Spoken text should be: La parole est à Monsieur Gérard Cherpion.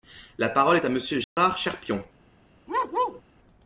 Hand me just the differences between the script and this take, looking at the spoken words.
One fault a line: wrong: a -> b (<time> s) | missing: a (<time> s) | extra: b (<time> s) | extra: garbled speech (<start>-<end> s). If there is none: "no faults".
no faults